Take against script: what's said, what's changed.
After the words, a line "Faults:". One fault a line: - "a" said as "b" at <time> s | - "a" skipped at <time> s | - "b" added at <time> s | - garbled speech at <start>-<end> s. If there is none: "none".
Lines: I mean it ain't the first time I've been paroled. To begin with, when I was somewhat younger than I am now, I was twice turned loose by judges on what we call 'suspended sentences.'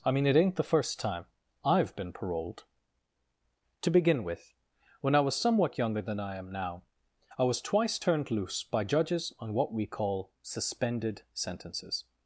I mean it ain't the first time I've been paroled. To begin with, when I was somewhat younger than I am now, I was twice turned loose by judges on what we call 'suspended sentences.'
Faults:
none